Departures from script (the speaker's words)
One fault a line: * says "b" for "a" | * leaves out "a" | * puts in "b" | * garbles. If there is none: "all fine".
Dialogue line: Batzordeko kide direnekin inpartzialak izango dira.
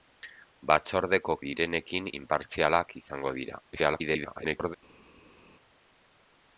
* leaves out "kide"
* garbles